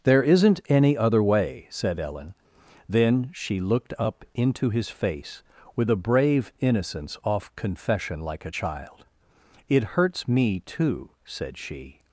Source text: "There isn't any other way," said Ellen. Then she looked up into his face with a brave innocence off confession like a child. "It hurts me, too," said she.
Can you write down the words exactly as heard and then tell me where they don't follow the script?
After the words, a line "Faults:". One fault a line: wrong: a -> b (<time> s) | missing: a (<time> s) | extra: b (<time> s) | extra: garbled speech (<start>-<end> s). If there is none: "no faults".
"There isn't any other way," said Ellen. Then she looked up into his face with a brave innocence off confession like a child. "It hurts me, too," said she.
Faults:
no faults